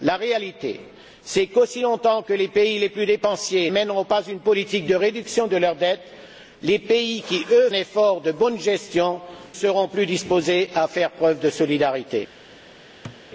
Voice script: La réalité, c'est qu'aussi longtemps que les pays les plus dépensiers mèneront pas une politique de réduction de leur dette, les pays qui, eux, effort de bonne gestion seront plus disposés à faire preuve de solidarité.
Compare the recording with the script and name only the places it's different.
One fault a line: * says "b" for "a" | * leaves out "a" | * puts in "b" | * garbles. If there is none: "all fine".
all fine